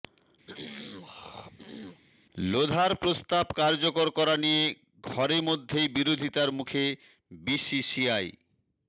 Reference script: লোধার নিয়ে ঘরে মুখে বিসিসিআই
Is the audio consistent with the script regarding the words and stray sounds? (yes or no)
no